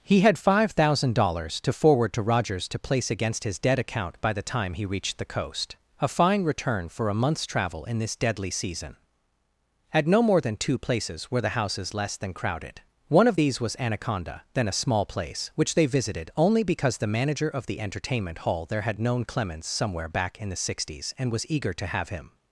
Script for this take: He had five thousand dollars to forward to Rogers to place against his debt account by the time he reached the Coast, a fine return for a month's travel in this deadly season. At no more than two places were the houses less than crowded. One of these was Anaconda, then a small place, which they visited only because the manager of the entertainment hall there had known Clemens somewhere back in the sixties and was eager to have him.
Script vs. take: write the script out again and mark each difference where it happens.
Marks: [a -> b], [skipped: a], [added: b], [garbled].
He had five thousand dollars to forward to Rogers to place against his debt account by the time he reached the Coast, a fine return for a month's travel in this deadly season. At no more than two places were the houses less than crowded. One of these was Anaconda, then a small place, which they visited only because the manager of the entertainment hall there had known Clemens somewhere back in the sixties and was eager to have him.